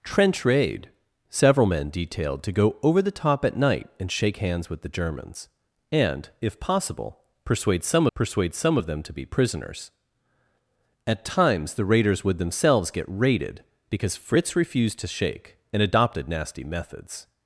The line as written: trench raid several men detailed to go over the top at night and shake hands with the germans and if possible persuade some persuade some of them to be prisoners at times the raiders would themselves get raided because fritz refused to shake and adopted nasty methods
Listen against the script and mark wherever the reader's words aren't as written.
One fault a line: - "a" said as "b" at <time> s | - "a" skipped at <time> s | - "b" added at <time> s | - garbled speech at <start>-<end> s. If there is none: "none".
none